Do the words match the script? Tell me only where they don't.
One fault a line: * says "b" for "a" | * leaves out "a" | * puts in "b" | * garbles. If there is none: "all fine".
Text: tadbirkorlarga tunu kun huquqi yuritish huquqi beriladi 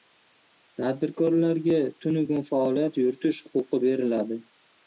* says "faoliyat" for "huquqi"